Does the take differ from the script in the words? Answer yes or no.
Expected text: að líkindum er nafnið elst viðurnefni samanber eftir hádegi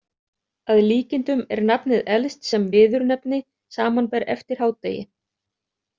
yes